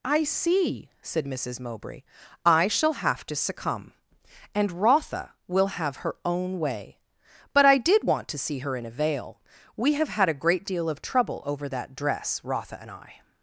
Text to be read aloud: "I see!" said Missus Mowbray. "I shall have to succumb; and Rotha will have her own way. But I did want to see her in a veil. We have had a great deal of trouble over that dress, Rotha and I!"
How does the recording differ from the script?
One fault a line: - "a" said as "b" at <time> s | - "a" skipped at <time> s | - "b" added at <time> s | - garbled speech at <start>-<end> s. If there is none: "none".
none